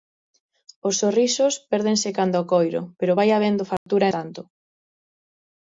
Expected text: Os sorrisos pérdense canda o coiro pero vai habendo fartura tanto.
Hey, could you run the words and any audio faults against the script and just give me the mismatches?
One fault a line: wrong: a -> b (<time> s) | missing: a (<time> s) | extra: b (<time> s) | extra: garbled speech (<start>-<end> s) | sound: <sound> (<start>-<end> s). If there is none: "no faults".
sound: dropout (3.8-3.9 s)